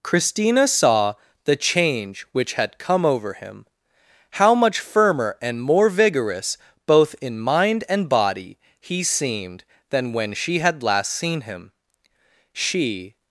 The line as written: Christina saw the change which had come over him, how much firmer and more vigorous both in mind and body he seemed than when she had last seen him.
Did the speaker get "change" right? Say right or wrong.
right